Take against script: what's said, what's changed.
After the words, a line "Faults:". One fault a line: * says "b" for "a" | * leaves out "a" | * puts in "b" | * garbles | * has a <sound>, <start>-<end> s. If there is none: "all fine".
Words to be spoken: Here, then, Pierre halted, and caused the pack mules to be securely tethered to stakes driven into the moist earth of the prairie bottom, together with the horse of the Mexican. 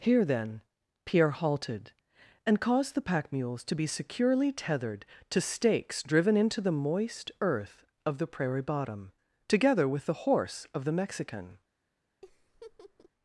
Here, then, Pierre halted, and caused the pack mules to be securely tethered to stakes driven into the moist earth of the prairie bottom, together with the horse of the Mexican.
Faults:
* has a laugh, 12.2-13.1 s